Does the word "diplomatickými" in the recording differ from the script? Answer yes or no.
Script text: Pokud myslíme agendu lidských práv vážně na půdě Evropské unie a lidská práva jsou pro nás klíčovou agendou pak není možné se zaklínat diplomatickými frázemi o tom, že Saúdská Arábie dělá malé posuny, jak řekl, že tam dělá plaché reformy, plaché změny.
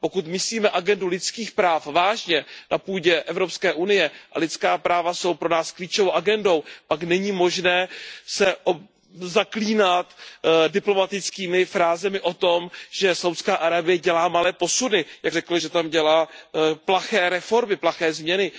no